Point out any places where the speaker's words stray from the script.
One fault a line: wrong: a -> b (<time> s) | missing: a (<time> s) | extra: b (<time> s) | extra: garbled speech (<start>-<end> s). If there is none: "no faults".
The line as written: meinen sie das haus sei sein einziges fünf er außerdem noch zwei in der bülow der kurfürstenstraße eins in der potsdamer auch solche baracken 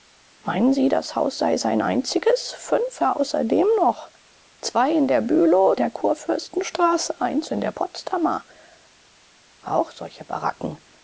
no faults